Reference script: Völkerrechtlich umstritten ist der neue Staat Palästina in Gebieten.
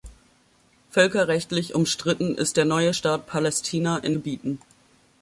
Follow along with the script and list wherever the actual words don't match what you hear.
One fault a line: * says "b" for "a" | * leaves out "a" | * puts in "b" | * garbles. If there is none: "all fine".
all fine